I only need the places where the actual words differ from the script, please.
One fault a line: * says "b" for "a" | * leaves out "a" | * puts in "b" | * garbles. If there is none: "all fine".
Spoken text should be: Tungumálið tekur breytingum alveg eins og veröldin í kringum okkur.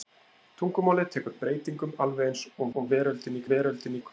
* puts in "og"
* says "veröldin" for "kringum"